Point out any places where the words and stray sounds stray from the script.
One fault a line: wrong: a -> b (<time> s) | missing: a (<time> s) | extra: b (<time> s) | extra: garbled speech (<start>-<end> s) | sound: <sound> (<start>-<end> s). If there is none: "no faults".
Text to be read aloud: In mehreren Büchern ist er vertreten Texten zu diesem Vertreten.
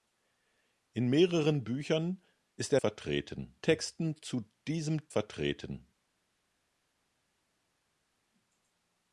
no faults